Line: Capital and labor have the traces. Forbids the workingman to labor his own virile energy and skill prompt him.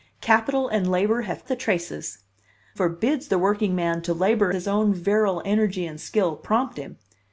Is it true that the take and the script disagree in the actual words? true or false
false